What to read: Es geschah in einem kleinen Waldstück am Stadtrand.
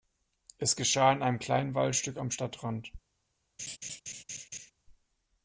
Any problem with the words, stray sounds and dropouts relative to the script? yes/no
yes